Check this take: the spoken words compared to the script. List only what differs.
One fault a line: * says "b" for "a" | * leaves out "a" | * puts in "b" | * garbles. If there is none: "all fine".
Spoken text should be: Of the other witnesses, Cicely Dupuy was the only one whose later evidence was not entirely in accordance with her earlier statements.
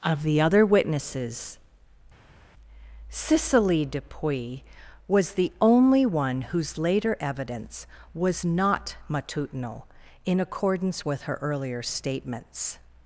* says "matutinal" for "entirely"